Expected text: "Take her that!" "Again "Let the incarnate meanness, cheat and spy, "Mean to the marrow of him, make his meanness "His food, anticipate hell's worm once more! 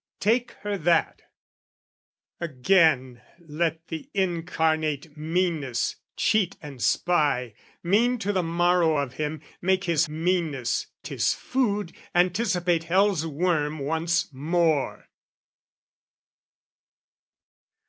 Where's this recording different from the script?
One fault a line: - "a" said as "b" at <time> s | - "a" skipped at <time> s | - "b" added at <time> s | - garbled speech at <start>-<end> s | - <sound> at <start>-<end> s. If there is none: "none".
none